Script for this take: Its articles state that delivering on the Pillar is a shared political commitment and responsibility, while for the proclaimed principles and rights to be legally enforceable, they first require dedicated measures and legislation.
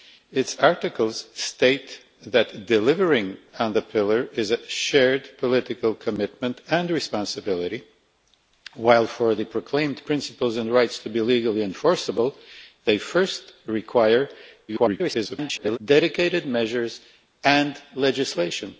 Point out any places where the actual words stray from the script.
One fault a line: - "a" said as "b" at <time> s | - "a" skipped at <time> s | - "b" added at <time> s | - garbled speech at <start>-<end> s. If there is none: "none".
- garbled speech at 14.7-15.8 s